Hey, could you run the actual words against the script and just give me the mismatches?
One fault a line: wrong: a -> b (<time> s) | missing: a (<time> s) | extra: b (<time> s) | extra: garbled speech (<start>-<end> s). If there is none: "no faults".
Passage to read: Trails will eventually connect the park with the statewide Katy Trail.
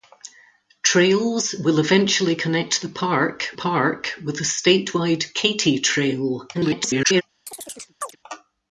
extra: park (3.5 s)
extra: garbled speech (6.5-7.2 s)